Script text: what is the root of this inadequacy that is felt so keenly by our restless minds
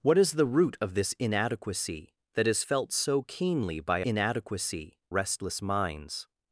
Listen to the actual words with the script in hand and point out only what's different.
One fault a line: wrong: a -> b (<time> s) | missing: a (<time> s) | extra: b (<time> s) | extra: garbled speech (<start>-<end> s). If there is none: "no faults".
wrong: our -> inadequacy (4.0 s)